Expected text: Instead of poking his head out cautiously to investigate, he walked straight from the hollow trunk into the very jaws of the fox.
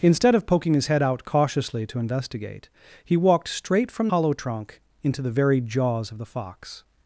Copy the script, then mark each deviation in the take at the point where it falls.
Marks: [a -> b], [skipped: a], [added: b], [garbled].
Instead of poking his head out cautiously to investigate, he walked straight from [skipped: the] hollow trunk into the very jaws of the fox.